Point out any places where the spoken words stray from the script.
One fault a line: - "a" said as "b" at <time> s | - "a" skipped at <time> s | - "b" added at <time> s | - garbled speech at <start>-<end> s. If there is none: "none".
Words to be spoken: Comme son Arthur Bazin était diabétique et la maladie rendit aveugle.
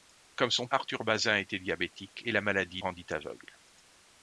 none